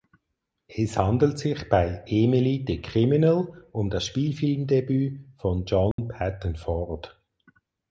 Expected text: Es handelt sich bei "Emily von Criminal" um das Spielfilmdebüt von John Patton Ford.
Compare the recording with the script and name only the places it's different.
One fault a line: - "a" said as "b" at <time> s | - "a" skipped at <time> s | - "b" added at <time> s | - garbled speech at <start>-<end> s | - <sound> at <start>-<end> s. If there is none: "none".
- "von" said as "the" at 2.6 s
- dropout at 5.9-6.0 s